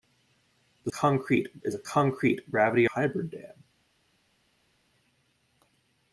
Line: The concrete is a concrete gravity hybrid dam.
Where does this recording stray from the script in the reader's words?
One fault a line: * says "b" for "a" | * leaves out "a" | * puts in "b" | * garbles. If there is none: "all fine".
all fine